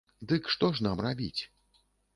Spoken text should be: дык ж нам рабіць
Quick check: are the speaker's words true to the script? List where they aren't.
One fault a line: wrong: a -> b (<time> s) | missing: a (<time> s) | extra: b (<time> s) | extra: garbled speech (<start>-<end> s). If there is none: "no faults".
extra: што (0.5 s)